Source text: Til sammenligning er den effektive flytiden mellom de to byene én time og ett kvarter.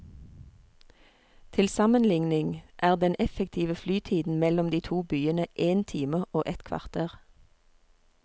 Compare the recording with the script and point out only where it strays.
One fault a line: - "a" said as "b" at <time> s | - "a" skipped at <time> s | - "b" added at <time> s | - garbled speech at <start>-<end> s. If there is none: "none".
none